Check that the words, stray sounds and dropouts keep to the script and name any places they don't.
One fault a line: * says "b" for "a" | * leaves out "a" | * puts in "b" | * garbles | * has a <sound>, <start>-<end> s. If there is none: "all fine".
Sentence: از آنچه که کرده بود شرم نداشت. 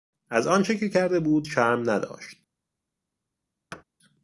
* has a thud, 3.7-3.8 s